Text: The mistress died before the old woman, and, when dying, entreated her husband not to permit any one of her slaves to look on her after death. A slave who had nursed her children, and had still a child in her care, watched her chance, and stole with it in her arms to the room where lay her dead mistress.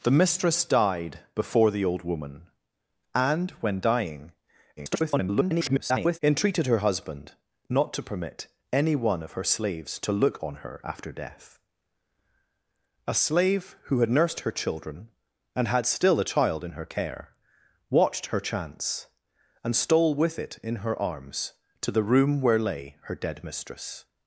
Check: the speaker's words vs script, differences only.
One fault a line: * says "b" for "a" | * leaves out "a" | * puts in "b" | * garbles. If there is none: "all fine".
* garbles